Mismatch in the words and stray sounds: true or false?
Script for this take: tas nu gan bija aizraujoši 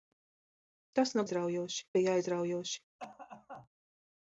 true